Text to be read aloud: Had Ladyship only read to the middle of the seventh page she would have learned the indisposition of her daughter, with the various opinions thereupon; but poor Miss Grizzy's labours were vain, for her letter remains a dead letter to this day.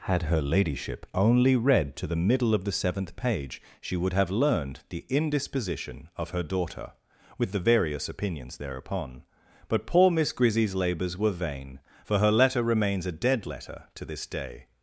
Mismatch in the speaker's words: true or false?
true